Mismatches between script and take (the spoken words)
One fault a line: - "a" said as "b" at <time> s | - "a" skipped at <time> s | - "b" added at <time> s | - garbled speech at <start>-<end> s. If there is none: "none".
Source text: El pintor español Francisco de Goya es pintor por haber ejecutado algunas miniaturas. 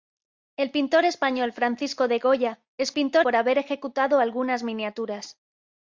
none